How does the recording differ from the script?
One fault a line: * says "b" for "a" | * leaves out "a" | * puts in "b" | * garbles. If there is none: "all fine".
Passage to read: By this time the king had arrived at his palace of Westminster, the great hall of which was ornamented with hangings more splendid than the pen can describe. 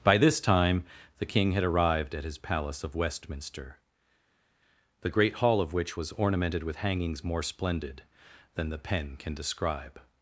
all fine